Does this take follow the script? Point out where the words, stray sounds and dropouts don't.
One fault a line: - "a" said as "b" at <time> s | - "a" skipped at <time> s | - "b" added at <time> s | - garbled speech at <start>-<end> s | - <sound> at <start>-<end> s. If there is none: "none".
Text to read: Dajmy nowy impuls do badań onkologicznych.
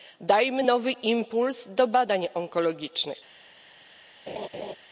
- laugh at 4.3-4.8 s